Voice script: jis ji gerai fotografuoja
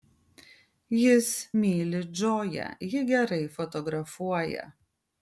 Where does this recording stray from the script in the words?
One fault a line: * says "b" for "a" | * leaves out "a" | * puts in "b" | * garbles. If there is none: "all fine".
* puts in "myli džoją"